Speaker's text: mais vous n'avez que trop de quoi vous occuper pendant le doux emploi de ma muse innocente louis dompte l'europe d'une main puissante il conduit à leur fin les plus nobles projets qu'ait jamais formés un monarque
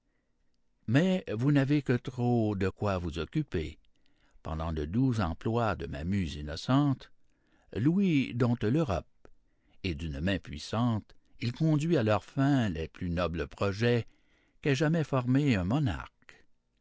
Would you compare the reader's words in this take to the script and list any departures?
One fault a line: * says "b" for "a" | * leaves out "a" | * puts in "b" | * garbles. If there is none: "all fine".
* puts in "et"